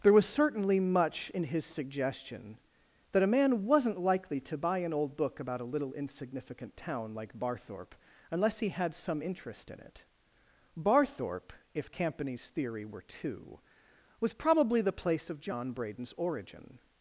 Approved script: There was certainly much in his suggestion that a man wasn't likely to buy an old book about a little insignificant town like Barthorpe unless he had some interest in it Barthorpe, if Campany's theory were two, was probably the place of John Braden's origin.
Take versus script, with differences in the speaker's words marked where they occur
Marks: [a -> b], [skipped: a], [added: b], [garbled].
There was certainly much in his suggestion that a man wasn't likely to buy an old book about a little insignificant town like Barthorpe unless he had some interest in it Barthorpe, if Campany's theory were two, was probably the place of John Braden's origin.